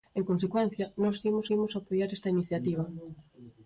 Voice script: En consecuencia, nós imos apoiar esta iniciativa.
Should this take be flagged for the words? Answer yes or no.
yes